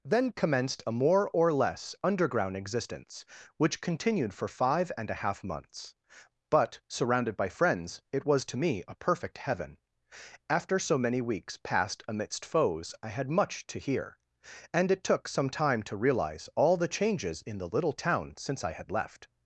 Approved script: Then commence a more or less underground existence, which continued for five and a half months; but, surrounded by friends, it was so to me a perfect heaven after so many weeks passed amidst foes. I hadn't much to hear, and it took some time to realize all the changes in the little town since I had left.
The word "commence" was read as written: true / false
false